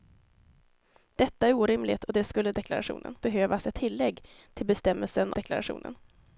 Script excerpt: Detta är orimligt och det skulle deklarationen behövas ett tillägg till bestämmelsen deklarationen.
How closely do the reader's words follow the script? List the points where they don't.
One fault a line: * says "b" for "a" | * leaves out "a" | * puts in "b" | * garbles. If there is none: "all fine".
all fine